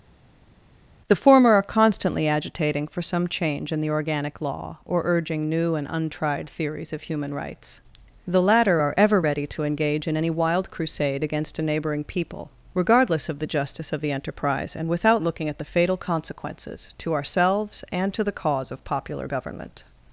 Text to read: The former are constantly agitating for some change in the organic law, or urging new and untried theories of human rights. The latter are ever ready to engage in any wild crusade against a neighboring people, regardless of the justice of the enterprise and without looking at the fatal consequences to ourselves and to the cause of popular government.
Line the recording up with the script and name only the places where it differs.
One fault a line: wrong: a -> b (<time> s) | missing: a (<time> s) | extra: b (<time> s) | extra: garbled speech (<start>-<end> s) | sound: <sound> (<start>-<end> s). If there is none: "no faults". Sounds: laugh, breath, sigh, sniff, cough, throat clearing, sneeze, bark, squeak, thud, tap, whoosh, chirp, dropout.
no faults